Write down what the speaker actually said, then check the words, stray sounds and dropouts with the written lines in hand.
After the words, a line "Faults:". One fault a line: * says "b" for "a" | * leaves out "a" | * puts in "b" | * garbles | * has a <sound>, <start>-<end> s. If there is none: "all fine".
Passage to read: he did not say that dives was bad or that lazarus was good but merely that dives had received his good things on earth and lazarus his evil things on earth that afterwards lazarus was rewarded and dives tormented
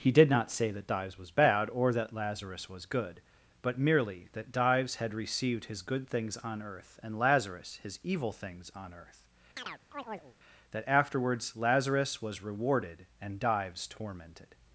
he did not say that dives was bad or that lazarus was good but merely that dives had received his good things on earth and lazarus his evil things on earth that afterwards lazarus was rewarded and dives tormented
Faults:
* has a chirp, 9.6-10.4 s